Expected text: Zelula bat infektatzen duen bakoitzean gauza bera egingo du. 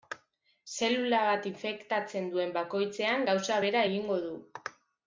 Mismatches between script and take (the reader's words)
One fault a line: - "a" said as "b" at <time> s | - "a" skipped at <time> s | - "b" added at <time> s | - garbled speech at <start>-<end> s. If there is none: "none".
none